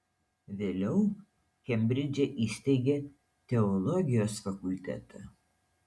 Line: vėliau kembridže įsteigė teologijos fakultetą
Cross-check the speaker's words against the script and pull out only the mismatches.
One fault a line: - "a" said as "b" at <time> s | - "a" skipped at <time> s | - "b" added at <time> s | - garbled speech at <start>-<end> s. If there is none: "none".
none